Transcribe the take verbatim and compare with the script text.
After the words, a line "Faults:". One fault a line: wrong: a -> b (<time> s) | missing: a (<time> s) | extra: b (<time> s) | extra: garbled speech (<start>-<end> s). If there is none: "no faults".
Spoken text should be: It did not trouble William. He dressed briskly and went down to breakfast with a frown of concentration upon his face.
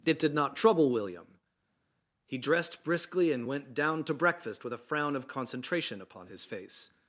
It did not trouble William. He dressed briskly and went down to breakfast with a frown of concentration upon his face.
Faults:
no faults